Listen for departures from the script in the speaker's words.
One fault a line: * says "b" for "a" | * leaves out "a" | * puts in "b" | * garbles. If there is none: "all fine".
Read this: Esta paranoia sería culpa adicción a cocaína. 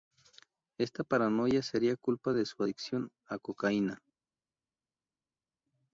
* puts in "de su"